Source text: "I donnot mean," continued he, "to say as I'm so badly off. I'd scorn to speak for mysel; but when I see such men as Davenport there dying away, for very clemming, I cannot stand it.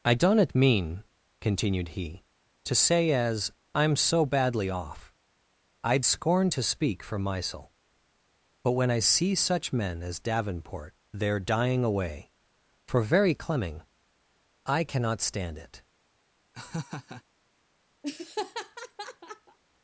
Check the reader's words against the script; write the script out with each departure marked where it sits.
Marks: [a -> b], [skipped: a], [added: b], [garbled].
"I donnot mean," continued he, "to say as I'm so badly off. I'd scorn to speak for mysel; but when I see such men as Davenport there dying away, for very clemming, I cannot stand it.